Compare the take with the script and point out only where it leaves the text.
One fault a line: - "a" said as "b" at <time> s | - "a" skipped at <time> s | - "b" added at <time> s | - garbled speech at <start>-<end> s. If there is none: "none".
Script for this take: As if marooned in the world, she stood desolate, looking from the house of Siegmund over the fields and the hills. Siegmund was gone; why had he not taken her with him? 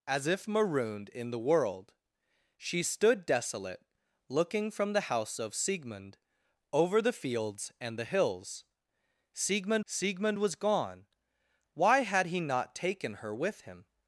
- "siegmund" added at 9.8 s